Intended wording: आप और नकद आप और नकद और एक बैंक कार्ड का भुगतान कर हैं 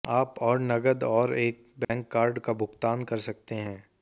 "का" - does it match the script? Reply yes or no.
yes